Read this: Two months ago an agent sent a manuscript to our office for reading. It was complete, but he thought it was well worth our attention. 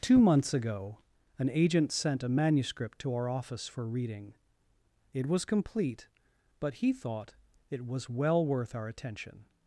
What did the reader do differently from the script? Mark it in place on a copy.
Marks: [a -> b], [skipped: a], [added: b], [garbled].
Two months ago an agent sent a manuscript to our office for reading. It was complete, but he thought it was well worth our attention.